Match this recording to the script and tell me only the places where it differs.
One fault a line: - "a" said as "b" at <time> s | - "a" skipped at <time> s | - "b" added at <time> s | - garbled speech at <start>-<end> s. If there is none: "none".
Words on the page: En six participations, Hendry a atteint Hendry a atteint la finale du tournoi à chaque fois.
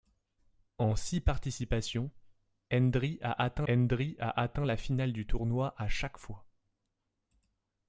none